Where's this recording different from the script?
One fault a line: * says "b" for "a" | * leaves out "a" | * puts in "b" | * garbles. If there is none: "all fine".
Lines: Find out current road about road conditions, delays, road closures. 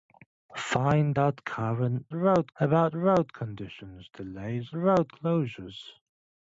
all fine